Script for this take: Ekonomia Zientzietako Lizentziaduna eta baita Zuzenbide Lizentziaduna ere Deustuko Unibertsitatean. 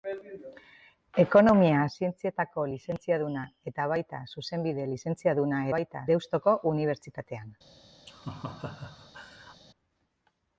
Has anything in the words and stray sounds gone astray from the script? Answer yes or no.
yes